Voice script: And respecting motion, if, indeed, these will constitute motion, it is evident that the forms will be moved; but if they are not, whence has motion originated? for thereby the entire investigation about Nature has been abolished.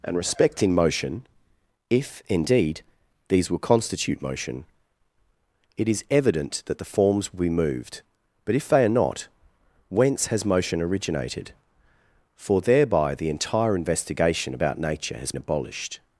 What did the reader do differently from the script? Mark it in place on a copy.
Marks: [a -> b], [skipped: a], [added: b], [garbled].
And respecting motion, if, indeed, these will constitute motion, it is evident that the forms will be moved; but if they are not, whence has motion originated? for thereby the entire investigation about Nature has [skipped: been] abolished.